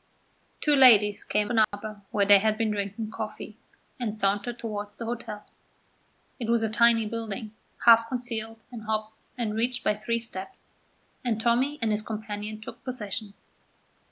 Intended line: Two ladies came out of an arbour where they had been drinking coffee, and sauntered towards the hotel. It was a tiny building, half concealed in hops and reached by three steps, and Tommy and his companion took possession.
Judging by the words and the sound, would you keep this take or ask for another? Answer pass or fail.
fail